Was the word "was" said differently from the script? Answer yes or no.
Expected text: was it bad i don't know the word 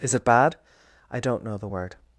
yes